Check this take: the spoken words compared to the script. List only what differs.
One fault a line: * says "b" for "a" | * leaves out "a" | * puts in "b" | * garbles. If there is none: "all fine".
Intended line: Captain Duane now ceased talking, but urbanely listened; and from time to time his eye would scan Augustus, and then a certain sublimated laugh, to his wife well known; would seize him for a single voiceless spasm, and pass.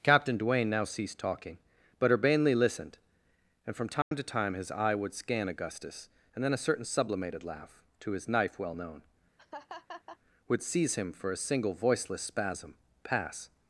* says "knife" for "wife"
* leaves out "and"